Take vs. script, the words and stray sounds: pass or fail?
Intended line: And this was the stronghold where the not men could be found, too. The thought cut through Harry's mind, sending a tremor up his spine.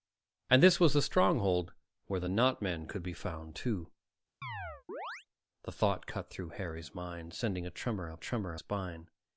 fail